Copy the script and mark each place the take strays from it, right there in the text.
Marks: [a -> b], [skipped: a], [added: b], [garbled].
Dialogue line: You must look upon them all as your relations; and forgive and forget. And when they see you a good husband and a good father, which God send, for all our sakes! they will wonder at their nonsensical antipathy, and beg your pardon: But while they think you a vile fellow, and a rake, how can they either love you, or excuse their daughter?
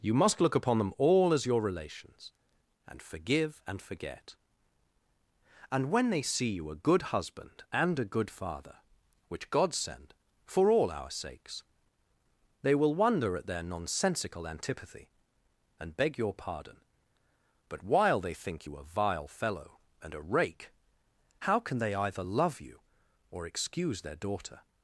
You must look upon them all as your relations; and forgive and forget. And when they see you a good husband and a good father, which God send, for all our sakes! they will wonder at their nonsensical antipathy, and beg your pardon: But while they think you a vile fellow, and a rake, how can they either love you, or excuse their daughter?